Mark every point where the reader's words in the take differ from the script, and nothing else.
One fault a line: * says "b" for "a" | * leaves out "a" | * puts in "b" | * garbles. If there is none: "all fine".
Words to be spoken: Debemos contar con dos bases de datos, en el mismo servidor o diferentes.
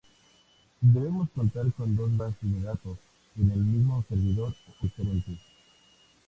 all fine